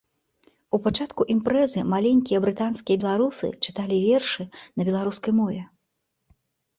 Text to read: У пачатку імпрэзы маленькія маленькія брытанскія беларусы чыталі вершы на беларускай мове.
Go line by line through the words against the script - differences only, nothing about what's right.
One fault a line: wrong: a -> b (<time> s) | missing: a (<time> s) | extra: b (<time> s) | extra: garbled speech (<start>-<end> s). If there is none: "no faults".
missing: маленькія (2.4 s)